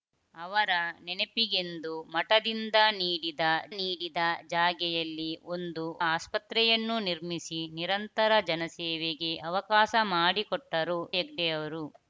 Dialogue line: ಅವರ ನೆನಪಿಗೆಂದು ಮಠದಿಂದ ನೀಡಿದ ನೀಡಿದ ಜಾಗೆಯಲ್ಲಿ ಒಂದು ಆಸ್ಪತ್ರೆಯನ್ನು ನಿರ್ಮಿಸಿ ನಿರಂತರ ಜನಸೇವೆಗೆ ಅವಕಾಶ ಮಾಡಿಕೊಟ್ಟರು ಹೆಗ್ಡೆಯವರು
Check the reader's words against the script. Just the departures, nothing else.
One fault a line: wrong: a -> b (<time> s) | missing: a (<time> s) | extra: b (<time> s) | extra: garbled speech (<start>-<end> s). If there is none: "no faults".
no faults